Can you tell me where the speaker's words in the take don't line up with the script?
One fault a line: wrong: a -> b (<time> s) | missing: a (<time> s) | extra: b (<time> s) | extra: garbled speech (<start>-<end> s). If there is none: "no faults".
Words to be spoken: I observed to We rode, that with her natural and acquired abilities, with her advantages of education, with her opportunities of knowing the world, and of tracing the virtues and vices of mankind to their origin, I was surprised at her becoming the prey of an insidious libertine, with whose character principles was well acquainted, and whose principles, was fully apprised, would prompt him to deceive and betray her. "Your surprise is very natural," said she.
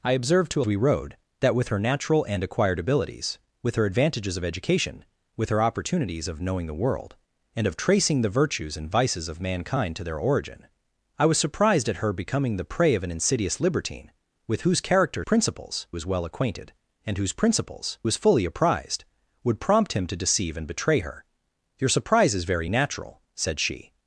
no faults